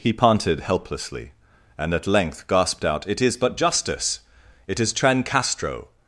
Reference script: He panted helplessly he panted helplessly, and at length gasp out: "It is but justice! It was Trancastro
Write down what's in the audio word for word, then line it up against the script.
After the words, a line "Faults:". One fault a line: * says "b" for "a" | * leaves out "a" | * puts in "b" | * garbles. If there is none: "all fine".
He panted helplessly, and at length gasped out: "It is but justice! It is Trancastro
Faults:
* leaves out "he panted helplessly"
* says "gasped" for "gasp"
* says "is" for "was"